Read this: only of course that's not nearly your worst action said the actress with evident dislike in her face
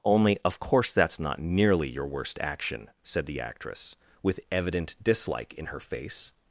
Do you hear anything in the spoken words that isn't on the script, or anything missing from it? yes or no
no